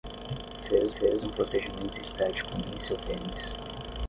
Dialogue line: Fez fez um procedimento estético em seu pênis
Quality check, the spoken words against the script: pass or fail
pass